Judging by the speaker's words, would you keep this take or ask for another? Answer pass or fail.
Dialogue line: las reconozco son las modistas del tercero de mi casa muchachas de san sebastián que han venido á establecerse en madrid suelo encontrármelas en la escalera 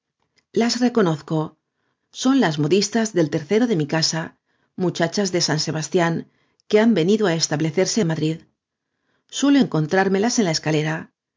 pass